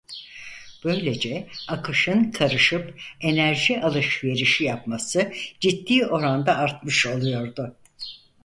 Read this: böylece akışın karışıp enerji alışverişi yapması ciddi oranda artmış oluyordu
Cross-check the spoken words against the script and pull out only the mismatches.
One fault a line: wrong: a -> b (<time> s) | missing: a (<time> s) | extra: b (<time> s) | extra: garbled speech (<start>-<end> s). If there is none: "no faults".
no faults